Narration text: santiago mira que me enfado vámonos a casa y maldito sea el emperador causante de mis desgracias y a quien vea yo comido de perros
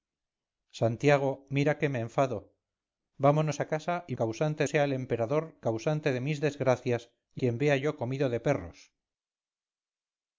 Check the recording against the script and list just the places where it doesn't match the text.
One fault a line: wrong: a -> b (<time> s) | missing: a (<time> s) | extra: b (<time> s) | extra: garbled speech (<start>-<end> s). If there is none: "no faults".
wrong: maldito -> causante (4.2 s)
missing: a (7.4 s)